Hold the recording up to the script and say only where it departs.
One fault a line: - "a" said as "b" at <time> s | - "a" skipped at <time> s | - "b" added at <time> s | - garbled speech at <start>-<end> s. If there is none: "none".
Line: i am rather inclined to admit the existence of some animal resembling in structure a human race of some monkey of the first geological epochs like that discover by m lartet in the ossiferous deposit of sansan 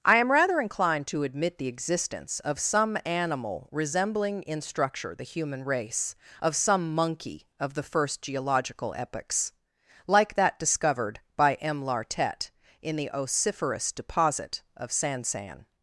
- "a" said as "the" at 5.1 s
- "discover" said as "discovered" at 10.6 s